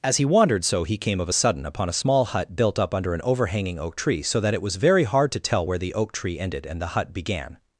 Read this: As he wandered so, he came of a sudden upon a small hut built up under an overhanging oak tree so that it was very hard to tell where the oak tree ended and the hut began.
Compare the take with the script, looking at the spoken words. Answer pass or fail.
pass